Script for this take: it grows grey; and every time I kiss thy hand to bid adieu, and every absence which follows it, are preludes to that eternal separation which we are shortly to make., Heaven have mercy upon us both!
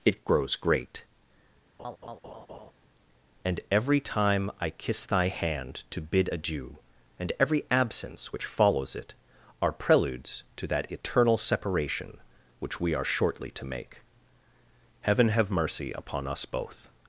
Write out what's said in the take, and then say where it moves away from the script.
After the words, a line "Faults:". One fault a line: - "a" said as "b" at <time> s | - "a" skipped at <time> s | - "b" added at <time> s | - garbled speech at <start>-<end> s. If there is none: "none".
it grows great; and every time I kiss thy hand to bid adieu, and every absence which follows it, are preludes to that eternal separation which we are shortly to make., Heaven have mercy upon us both!
Faults:
- "grey" said as "great" at 0.6 s